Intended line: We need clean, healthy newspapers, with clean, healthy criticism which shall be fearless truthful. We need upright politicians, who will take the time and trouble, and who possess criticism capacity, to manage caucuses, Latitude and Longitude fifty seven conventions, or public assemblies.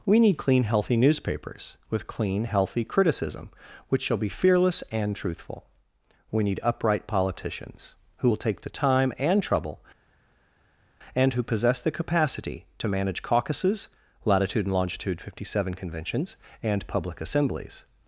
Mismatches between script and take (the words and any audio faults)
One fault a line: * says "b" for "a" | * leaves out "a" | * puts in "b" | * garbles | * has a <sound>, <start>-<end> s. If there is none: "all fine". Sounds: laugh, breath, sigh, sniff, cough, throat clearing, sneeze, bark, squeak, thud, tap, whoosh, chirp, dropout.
* puts in "and"
* says "the" for "criticism"
* says "and" for "or"